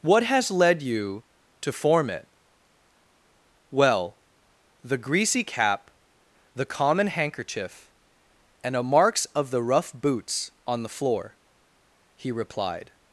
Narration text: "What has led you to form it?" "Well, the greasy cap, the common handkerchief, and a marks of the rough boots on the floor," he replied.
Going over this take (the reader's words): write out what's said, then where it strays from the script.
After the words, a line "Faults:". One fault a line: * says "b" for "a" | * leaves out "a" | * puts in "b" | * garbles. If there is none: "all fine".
"What has led you to form it?" "Well, the greasy cap, the common handkerchief, and a marks of the rough boots on the floor," he replied.
Faults:
all fine